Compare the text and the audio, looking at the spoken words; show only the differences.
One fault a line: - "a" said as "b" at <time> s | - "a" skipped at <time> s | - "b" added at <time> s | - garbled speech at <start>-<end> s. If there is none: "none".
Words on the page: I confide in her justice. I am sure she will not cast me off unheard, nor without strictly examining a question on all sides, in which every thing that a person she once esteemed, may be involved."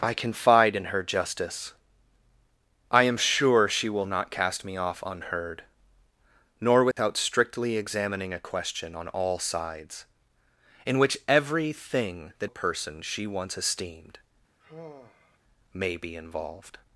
none